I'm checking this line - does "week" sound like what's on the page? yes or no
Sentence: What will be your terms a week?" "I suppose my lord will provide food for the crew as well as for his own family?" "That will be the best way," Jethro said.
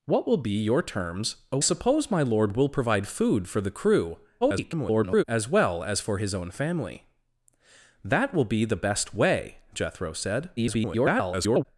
no